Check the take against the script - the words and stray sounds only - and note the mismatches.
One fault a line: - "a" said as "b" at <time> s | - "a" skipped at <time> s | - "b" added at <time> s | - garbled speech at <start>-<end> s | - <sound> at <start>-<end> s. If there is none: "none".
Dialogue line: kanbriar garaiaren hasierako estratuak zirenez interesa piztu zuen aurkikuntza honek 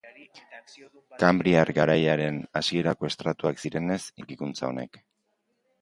- "interesa piztu zuen" skipped at 4.0 s